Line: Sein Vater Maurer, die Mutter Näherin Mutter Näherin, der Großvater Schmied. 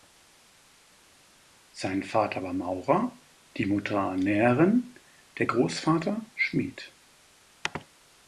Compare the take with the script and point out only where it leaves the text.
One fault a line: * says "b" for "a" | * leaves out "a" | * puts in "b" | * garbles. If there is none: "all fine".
* puts in "war"
* leaves out "Mutter Näherin"